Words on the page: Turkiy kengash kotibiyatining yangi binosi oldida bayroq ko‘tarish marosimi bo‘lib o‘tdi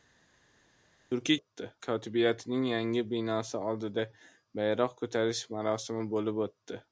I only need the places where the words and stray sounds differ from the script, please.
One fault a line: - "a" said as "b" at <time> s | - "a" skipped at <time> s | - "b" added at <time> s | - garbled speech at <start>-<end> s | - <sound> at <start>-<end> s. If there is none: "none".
- "kengash" said as "o‘tdi" at 1.4 s